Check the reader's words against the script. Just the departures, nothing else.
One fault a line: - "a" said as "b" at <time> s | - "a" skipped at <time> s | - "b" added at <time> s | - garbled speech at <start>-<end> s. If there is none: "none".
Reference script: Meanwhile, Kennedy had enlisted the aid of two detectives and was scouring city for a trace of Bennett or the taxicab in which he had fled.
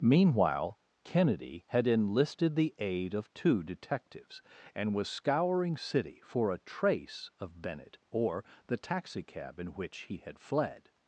none